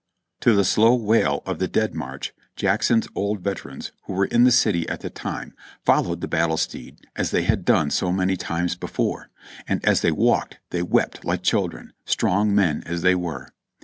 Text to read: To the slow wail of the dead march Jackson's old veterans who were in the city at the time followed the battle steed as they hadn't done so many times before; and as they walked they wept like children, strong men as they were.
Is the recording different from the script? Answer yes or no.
yes